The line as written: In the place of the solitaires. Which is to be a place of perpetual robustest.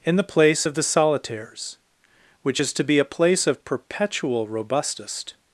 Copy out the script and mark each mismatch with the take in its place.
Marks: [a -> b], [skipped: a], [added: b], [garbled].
In the place of the solitaires. Which is to be a place of perpetual robustest.